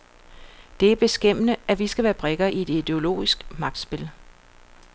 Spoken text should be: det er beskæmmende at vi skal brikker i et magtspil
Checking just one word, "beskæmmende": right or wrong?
right